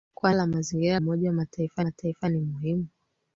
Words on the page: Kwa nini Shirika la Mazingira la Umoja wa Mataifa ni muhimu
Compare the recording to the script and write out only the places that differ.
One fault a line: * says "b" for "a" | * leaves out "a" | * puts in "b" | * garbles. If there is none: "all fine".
* leaves out "nini Shirika"
* leaves out "la"
* puts in "Mataifa"